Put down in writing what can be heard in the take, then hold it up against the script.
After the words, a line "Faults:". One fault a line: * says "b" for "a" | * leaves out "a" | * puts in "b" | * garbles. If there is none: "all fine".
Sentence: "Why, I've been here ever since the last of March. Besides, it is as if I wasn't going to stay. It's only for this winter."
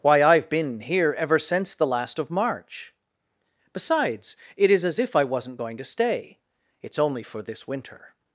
"Why, I've been here ever since the last of March. Besides, it is as if I wasn't going to stay. It's only for this winter."
Faults:
all fine